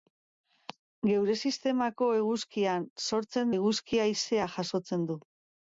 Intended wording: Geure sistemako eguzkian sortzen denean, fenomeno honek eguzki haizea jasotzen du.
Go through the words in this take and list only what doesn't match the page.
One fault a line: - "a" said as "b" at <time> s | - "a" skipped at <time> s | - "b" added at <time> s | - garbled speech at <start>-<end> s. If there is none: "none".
- "denean fenomeno honek" skipped at 3.5 s